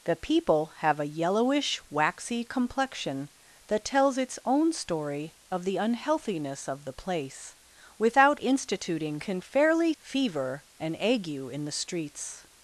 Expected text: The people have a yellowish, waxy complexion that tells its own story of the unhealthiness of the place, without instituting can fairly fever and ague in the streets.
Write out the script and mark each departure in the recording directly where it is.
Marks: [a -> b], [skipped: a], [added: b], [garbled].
The people have a yellowish, waxy complexion that tells its own story of the unhealthiness of the place, without instituting can fairly fever and ague in the streets.